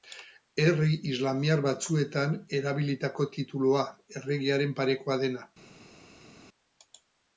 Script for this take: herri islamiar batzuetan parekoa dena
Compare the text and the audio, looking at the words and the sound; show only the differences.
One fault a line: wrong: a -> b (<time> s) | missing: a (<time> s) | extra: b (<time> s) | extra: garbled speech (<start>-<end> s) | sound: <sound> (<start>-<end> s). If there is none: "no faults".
extra: erabilitako titulua erregearen (2.6 s)